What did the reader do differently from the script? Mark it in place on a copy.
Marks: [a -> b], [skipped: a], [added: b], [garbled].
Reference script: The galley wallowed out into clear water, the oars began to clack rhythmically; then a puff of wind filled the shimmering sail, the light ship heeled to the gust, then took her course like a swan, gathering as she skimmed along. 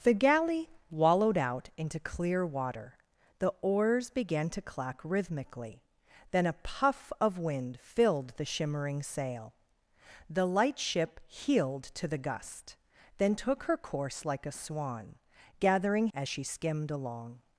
The galley wallowed out into clear water, the oars began to clack rhythmically; then a puff of wind filled the shimmering sail, the light ship heeled to the gust, then took her course like a swan, gathering as she skimmed along.